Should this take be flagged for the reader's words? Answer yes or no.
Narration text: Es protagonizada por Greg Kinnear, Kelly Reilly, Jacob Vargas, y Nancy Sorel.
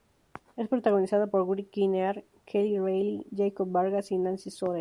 no